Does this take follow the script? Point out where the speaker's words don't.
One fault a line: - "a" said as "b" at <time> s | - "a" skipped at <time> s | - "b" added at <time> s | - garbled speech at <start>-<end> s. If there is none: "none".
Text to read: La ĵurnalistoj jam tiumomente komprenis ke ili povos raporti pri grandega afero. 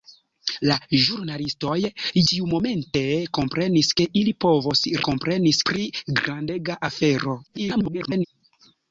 - "jam" skipped at 1.8 s
- "raporti" said as "komprenis" at 5.1 s
- garbled speech at 7.5-8.3 s